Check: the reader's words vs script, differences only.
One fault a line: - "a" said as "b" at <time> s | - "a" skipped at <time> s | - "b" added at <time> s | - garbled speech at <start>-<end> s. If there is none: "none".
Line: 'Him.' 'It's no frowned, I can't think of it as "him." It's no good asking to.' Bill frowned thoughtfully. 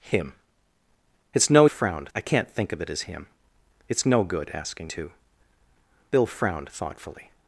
none